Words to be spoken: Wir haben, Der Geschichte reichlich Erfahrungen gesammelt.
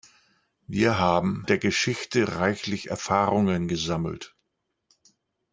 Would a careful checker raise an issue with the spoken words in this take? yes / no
no